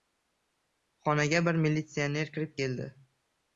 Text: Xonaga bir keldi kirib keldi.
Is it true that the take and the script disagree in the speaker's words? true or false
true